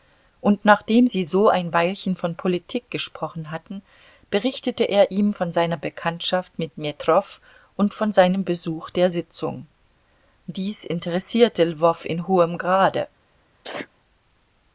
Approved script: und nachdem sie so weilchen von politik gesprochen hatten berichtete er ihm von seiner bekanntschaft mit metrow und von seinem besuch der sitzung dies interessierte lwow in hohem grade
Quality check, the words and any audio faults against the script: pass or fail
fail